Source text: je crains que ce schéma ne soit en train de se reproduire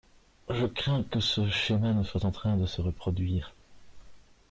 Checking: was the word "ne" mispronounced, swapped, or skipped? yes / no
no